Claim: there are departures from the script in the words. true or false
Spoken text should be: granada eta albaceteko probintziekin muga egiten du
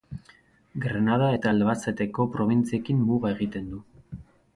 false